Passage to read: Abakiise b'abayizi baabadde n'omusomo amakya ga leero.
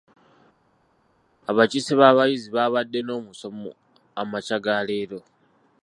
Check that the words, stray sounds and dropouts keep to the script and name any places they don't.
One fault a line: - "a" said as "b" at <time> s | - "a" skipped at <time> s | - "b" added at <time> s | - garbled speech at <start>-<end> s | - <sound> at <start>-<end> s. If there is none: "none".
none